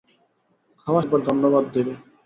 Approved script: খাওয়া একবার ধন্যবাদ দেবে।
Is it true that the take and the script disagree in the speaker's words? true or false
false